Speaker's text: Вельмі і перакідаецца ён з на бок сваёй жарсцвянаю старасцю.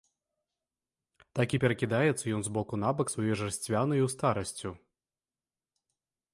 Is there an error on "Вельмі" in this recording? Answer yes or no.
yes